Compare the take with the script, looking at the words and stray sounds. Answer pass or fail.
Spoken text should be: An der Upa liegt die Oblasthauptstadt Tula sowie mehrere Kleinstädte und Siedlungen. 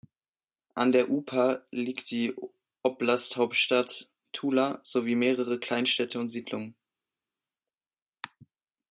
pass